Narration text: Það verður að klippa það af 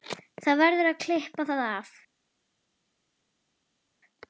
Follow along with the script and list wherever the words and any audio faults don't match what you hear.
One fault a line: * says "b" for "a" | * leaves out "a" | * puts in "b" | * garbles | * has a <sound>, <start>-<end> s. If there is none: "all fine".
all fine